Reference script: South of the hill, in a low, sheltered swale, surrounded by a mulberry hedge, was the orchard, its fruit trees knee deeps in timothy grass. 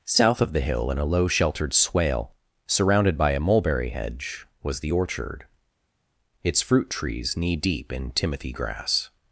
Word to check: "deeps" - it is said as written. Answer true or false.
false